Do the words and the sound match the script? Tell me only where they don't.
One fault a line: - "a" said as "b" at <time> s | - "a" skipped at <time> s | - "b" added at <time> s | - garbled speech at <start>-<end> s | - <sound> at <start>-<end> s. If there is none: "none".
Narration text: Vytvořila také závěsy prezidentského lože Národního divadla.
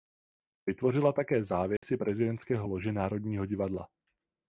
- dropout at 1.8-1.8 s